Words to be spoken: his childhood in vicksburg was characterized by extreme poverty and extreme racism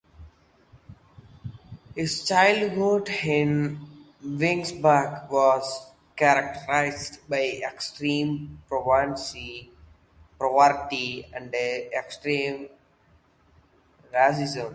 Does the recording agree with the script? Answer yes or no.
yes